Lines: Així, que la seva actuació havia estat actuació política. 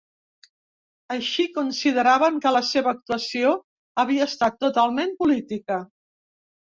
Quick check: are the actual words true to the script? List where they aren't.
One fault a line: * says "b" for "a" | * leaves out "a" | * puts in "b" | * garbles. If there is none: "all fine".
* puts in "consideraven"
* says "totalment" for "actuació"